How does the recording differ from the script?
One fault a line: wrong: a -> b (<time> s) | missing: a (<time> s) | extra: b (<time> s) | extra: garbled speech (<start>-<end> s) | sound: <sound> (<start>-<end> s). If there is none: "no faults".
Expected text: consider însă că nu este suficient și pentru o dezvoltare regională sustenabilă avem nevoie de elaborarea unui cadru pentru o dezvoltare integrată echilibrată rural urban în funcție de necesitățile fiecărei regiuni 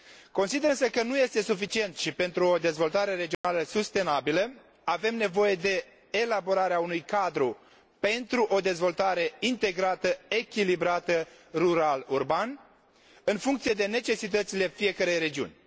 sound: dropout (3.3-3.4 s)